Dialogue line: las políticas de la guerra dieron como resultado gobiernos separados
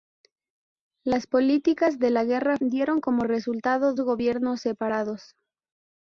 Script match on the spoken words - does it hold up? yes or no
yes